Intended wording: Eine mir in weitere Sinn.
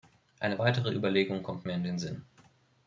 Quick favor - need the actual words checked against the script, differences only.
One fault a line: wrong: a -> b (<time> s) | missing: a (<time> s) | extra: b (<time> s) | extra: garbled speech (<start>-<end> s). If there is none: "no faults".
extra: weitere Überlegung kommt (0.6 s)
wrong: weitere -> den (1.8 s)